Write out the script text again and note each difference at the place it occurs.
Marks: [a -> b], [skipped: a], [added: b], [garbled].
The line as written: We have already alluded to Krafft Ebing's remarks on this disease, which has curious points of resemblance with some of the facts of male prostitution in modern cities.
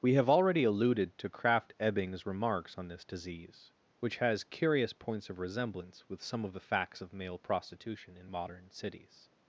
We have already alluded to Krafft Ebing's remarks on this disease, which has curious points of resemblance with some of the facts of male prostitution in modern cities.